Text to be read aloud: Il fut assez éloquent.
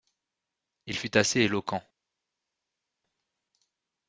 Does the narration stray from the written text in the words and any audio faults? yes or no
no